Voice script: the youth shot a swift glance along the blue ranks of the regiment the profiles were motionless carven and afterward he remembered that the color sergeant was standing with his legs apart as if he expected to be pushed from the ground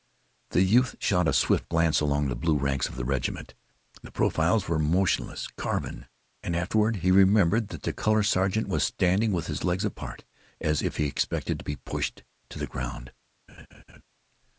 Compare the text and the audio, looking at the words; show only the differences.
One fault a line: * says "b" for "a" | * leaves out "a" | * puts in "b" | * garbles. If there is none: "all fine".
* says "to" for "from"